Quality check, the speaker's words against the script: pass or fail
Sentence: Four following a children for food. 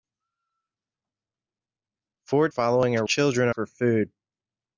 pass